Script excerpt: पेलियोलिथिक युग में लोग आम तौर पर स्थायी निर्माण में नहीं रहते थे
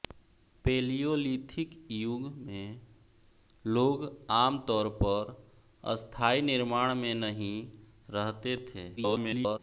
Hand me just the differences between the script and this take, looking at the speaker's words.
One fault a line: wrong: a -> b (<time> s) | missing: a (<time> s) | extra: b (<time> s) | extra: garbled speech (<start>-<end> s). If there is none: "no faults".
extra: garbled speech (9.0-9.6 s)